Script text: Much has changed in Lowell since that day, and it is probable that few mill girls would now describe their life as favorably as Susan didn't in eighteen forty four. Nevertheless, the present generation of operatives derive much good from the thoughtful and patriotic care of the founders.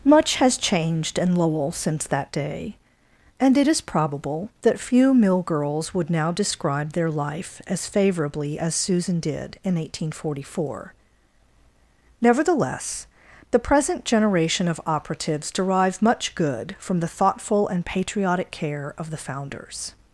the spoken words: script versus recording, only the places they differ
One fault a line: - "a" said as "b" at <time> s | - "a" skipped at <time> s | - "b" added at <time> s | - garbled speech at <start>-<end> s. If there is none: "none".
- "didn't" said as "did" at 9.2 s